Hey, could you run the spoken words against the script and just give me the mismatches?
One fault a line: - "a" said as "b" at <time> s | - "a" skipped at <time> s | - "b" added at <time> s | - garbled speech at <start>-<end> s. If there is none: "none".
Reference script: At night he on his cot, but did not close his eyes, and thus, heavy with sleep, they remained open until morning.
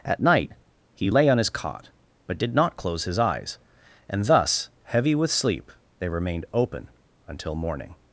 - "lay" added at 1.1 s